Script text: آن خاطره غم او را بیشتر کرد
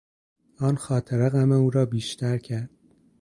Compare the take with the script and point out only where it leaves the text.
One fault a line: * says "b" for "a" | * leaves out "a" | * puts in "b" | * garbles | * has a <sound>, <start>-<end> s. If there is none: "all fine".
all fine